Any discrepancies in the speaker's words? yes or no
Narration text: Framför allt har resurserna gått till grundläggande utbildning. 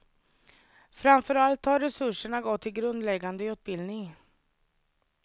no